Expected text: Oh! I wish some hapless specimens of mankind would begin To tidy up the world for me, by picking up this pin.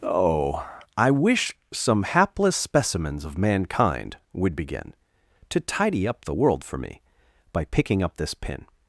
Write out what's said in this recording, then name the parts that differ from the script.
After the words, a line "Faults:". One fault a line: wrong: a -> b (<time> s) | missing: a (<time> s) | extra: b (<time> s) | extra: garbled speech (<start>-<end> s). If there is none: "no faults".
Oh! I wish some hapless specimens of mankind would begin To tidy up the world for me, by picking up this pin.
Faults:
no faults